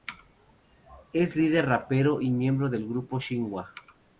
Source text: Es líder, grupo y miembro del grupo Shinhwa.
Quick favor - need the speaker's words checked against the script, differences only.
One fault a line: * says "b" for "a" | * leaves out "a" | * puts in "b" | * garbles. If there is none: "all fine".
* says "rapero" for "grupo"